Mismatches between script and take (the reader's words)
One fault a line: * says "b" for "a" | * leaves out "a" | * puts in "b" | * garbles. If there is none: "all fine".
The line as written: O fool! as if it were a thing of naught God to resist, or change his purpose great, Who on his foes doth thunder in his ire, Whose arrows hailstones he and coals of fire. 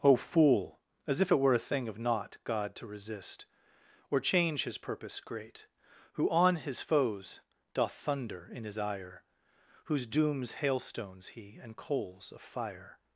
* says "dooms" for "arrows"